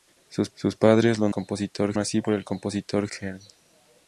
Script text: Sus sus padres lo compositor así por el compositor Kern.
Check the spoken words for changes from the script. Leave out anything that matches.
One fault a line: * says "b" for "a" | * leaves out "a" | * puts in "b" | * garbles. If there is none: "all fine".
all fine